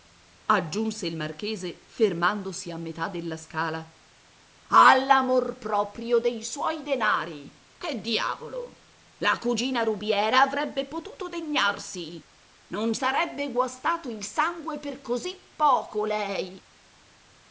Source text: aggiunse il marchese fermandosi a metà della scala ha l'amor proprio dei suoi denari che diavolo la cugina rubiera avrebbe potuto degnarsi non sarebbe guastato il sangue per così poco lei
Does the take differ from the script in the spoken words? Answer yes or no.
no